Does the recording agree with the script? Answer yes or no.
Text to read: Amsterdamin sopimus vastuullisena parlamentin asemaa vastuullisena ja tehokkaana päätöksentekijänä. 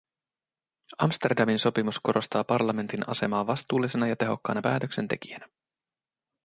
no